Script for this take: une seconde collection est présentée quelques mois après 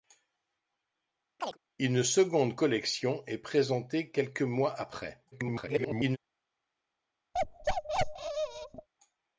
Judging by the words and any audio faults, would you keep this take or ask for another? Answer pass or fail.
fail